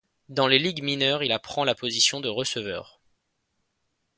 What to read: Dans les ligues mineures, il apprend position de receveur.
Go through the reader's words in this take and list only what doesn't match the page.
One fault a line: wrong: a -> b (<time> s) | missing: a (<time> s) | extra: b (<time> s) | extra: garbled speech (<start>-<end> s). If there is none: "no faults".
extra: la (1.7 s)